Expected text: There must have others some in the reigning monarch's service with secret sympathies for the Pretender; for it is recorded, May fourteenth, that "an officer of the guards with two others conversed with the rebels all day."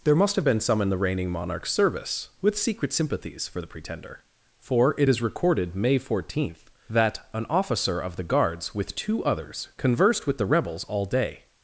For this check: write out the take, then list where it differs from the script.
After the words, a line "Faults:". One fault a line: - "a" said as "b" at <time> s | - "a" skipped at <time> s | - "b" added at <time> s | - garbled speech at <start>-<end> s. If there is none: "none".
There must have been some in the reigning monarch's service with secret sympathies for the Pretender; for it is recorded, May fourteenth, that "an officer of the guards with two others conversed with the rebels all day."
Faults:
- "others" said as "been" at 0.4 s